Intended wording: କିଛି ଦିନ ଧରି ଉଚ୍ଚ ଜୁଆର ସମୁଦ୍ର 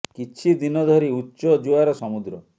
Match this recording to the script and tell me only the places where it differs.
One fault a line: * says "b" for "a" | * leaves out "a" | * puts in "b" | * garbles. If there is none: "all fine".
all fine